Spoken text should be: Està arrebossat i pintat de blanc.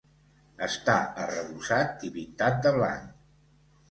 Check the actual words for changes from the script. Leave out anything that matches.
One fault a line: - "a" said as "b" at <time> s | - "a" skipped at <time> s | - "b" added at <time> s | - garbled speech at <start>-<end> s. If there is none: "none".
none